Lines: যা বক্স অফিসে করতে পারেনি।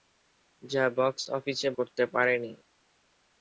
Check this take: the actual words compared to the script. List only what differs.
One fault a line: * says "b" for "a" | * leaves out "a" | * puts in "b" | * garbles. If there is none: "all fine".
all fine